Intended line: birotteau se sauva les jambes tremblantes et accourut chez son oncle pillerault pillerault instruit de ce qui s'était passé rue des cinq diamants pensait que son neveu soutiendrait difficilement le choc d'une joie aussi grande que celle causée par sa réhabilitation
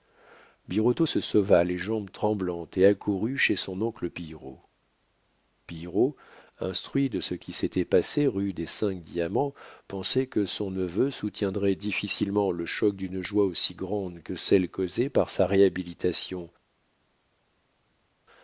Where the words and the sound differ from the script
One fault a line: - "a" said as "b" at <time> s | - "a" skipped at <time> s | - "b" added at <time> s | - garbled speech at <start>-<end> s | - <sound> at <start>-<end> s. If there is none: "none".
none